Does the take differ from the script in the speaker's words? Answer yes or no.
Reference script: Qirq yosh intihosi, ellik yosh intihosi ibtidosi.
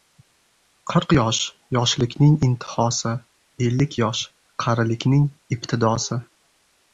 yes